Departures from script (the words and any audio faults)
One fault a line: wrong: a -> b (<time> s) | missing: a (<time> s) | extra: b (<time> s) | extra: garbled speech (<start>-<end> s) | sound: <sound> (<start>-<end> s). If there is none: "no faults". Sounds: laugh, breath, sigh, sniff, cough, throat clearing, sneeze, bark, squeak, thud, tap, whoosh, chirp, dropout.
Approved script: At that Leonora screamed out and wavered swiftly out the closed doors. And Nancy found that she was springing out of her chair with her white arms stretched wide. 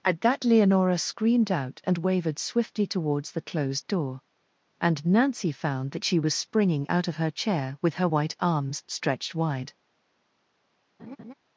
wrong: out -> towards (2.9 s)
wrong: doors -> door (3.9 s)
sound: laugh (11.0-11.3 s)